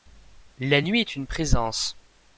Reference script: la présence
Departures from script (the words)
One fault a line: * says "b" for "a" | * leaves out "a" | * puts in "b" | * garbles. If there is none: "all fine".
* puts in "nuit est une"